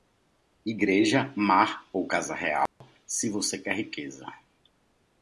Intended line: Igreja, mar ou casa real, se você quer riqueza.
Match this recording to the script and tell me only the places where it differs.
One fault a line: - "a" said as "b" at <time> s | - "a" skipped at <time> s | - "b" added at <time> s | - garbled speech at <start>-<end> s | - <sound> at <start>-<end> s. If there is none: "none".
- dropout at 2.7-2.8 s